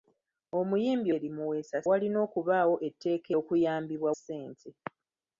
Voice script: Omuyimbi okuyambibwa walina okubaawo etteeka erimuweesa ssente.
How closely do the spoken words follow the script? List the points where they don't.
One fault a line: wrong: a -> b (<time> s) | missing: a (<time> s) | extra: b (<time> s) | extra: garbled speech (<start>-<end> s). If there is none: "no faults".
wrong: okuyambibwa -> erimuweesa (1.1 s)
wrong: erimuweesa -> okuyambibwa (3.4 s)